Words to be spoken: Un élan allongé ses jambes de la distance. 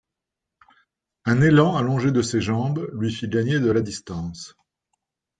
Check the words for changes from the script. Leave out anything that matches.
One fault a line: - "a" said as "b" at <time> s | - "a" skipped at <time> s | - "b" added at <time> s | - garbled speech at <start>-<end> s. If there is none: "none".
- "de" added at 2.1 s
- "lui fit gagner" added at 2.9 s